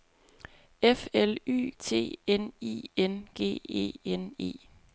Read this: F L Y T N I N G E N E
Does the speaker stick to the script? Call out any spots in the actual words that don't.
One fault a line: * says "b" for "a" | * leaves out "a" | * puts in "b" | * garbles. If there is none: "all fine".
all fine